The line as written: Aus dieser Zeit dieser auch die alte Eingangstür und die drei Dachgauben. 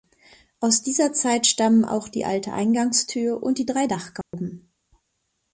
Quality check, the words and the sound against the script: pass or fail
fail